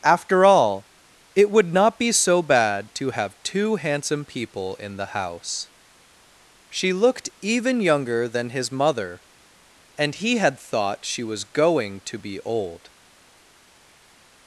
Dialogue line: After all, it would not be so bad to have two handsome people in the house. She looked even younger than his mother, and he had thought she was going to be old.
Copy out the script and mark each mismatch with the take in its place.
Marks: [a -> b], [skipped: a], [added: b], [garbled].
After all, it would not be so bad to have two handsome people in the house. She looked even younger than his mother, and he had thought she was going to be old.